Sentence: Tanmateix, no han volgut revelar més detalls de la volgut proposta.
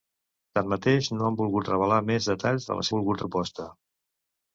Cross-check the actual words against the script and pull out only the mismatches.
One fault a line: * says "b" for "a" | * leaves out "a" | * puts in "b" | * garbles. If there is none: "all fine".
all fine